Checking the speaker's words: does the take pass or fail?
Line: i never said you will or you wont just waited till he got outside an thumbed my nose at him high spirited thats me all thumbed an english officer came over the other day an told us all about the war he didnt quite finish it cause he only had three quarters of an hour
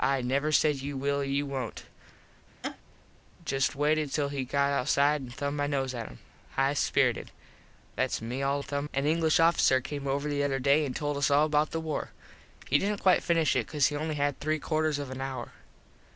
pass